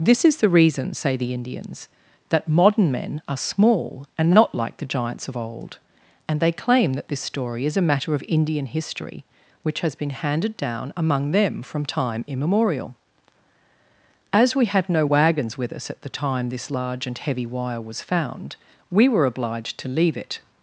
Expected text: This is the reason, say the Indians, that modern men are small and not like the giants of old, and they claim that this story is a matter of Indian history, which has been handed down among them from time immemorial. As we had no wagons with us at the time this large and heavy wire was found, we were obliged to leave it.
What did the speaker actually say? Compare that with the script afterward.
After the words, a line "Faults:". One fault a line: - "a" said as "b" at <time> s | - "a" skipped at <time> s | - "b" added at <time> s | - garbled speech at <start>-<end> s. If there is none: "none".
This is the reason, say the Indians, that modern men are small and not like the giants of old, and they claim that this story is a matter of Indian history, which has been handed down among them from time immemorial. As we had no wagons with us at the time this large and heavy wire was found, we were obliged to leave it.
Faults:
none